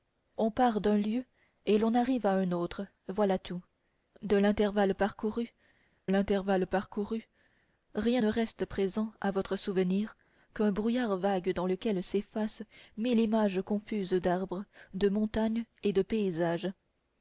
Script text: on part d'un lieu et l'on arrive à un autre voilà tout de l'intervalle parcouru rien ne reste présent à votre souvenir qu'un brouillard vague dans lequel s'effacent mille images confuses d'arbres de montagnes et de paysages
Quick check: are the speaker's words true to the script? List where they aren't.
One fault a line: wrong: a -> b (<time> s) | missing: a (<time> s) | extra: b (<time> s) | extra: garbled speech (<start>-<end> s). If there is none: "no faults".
extra: l'intervalle parcouru (6.0 s)